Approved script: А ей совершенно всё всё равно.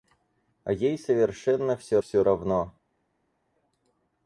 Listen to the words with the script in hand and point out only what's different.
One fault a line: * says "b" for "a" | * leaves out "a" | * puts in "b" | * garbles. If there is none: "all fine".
all fine